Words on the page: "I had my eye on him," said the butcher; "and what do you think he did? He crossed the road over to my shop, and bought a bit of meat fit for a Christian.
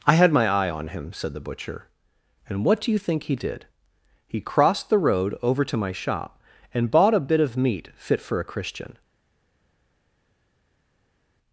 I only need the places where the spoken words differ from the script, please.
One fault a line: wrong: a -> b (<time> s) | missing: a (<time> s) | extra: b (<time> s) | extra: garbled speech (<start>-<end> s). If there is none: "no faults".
no faults